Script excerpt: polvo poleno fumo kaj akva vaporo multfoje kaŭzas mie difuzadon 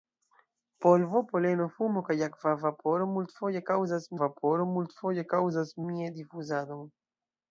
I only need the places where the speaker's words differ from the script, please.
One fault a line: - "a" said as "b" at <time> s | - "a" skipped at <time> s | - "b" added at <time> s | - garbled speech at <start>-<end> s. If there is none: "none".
- "vaporo multfoje kaŭzas" added at 4.2 s